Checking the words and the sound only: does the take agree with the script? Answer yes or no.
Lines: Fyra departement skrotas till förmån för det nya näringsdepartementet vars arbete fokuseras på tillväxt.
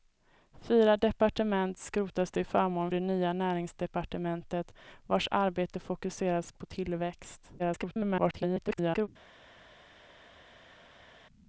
no